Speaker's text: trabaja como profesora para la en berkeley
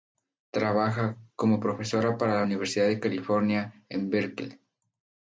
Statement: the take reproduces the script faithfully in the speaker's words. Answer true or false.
false